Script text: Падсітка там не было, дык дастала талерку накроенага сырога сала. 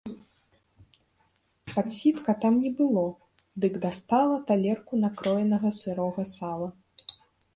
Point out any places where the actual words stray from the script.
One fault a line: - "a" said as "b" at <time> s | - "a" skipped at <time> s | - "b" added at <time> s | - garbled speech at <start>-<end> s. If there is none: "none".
none